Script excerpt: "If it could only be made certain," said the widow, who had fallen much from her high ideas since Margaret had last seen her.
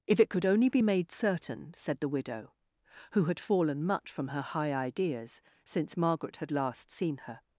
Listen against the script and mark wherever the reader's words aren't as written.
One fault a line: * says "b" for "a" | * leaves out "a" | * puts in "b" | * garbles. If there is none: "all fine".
all fine